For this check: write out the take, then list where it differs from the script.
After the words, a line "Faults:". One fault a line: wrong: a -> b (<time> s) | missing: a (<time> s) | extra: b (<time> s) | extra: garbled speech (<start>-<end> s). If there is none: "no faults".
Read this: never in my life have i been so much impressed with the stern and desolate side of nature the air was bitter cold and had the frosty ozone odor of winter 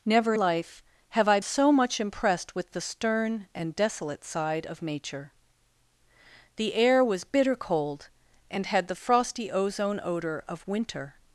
never life have i so much impressed with the stern and desolate side of nature the air was bitter cold and had the frosty ozone odor of winter
Faults:
missing: in my (0.3 s)
missing: been (1.4 s)